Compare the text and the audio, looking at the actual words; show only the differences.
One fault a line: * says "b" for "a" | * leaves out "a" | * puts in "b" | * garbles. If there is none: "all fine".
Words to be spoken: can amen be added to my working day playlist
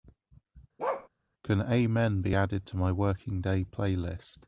all fine